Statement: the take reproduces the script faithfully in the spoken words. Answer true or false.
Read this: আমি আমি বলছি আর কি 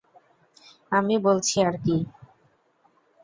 false